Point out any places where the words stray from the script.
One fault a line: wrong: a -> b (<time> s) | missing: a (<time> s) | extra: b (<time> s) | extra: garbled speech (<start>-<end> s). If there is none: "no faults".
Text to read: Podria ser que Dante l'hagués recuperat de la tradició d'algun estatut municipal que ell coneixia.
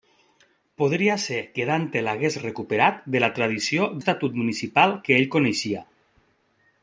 missing: d'algun (3.9 s)